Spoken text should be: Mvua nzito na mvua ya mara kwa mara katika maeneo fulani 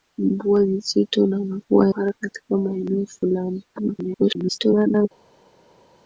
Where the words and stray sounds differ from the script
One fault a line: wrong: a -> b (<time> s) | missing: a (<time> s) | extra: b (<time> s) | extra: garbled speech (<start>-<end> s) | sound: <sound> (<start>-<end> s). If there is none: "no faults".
missing: ya mara kwa (1.9 s)
extra: garbled speech (3.7-5.1 s)